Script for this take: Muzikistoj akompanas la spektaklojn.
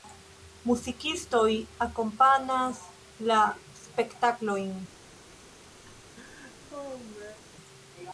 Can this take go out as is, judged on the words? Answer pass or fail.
pass